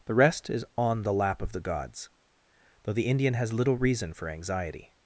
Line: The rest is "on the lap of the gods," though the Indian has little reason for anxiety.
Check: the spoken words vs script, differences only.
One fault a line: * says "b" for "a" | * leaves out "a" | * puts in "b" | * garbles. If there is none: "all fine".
all fine